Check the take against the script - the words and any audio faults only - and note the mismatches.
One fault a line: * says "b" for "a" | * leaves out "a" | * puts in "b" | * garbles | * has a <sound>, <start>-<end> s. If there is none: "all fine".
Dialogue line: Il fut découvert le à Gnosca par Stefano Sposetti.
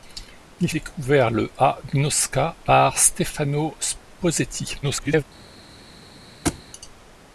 * leaves out "fut"
* garbles
* has a thud, 6.4-6.6 s